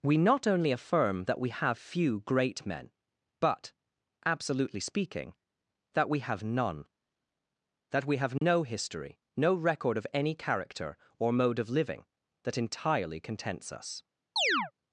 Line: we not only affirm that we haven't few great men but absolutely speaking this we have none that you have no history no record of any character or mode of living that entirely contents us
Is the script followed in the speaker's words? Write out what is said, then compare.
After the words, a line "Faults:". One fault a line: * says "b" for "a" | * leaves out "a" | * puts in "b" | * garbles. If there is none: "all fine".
we not only affirm that we have few great men but absolutely speaking that we have none that we have no history no record of any character or mode of living that entirely contents us
Faults:
* says "have" for "haven't"
* says "that" for "this"
* says "we" for "you"